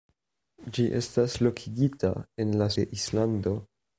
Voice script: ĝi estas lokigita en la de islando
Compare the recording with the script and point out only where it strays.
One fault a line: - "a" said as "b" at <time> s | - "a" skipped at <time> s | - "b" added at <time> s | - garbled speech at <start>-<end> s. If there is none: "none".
none